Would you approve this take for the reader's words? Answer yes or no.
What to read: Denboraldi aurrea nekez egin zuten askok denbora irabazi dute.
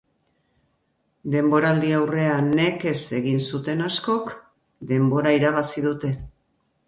yes